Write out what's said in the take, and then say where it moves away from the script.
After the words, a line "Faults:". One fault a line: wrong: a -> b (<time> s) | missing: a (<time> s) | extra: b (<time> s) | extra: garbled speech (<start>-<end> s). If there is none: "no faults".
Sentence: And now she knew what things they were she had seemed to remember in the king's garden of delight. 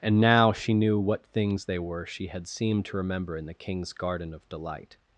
And now she knew what things they were she had seemed to remember in the king's garden of delight.
Faults:
no faults